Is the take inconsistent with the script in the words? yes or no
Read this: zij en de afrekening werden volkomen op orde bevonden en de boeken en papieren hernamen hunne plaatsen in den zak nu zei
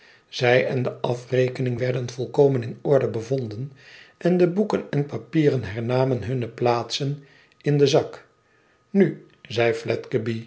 yes